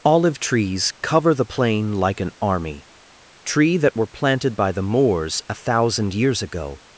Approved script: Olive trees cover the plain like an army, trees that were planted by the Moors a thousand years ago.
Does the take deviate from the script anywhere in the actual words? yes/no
yes